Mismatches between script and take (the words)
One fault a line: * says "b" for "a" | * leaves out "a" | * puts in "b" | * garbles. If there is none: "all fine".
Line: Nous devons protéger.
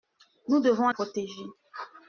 all fine